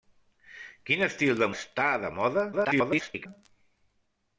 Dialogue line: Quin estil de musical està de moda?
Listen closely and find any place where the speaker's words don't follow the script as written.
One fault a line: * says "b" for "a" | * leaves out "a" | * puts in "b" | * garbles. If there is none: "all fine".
* leaves out "musical"
* garbles